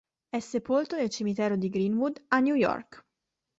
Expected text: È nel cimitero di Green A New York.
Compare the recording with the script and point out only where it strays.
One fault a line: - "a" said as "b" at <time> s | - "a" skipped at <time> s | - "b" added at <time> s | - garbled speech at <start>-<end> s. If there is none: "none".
- "sepolto" added at 0.4 s
- "Wood" added at 1.9 s